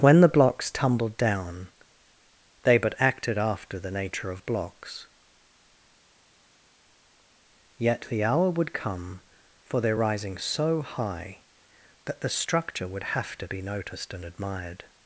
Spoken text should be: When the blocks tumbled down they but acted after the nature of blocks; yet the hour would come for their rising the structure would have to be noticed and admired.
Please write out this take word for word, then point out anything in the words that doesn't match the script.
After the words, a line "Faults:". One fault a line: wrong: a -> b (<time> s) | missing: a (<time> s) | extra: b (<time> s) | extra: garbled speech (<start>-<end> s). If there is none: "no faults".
When the blocks tumbled down they but acted after the nature of blocks; yet the hour would come for their rising so high that the structure would have to be noticed and admired.
Faults:
extra: so high that (10.4 s)